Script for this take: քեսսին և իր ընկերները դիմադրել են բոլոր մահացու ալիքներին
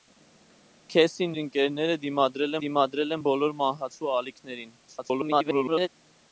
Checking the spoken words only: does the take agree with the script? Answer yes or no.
no